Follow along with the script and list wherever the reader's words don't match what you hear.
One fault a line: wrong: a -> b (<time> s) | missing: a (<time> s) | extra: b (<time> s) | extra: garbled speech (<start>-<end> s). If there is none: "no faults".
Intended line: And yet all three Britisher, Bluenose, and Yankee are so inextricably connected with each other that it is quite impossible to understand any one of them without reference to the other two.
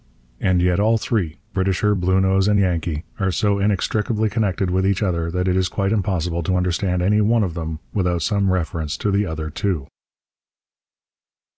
extra: some (8.2 s)